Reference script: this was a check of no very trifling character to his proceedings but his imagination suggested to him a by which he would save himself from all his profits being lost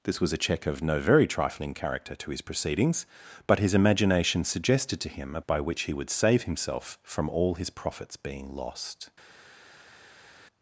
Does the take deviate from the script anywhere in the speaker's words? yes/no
no